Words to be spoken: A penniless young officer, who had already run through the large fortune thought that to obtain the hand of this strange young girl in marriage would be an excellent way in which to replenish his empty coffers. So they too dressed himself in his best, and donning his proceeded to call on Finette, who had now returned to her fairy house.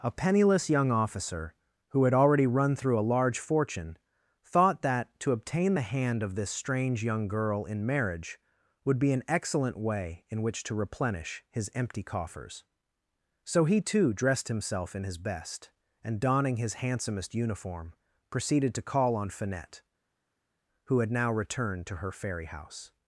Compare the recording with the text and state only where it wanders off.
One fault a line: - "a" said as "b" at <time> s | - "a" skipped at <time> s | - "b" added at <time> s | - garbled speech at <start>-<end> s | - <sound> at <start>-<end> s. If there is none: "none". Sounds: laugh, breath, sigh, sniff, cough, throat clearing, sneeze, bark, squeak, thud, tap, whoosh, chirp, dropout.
- "the" said as "a" at 3.0 s
- "they" said as "he" at 13.6 s
- "handsomest uniform" added at 16.7 s